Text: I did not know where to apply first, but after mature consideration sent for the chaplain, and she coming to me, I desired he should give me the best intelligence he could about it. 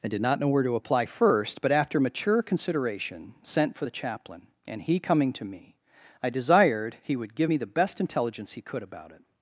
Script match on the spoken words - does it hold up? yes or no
no